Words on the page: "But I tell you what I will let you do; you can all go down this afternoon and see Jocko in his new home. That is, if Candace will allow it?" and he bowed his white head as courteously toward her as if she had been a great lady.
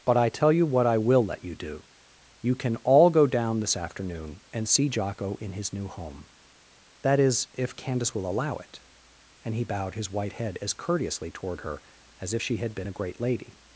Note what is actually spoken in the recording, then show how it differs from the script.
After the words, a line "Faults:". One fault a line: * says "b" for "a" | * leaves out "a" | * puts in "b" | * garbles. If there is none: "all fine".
"But I tell you what I will let you do; you can all go down this afternoon and see Jocko in his new home. That is, if Candace will allow it?" and he bowed his white head as courteously toward her as if she had been a great lady.
Faults:
all fine